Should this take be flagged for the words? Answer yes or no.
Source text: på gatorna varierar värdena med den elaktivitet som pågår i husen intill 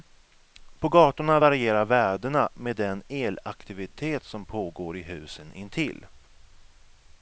no